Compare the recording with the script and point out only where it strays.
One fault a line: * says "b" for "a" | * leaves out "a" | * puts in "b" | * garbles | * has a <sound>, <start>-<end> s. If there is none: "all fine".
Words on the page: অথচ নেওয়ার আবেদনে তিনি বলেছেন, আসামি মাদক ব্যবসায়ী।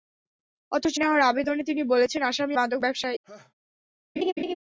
* has a laugh, 3.2-3.5 s
* has a laugh, 4.2-4.6 s